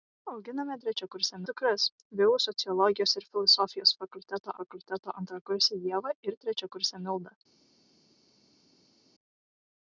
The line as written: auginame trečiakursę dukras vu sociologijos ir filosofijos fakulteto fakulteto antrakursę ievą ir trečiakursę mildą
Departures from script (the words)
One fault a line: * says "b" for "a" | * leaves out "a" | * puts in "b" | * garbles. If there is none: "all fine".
all fine